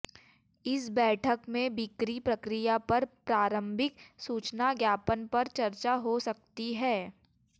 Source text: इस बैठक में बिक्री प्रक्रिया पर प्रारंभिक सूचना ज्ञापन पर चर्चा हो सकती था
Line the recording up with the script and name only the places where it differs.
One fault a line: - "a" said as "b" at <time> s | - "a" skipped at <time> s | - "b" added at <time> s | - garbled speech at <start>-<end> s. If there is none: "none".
- "था" said as "है" at 6.7 s